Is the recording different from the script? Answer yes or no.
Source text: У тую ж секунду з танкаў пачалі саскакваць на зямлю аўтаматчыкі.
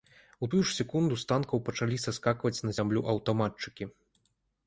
no